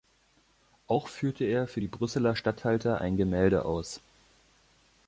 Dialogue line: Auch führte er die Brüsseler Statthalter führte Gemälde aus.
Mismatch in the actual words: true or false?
true